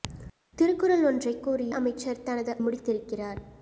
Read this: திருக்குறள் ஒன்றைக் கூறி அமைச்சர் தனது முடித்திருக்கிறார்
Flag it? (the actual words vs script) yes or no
no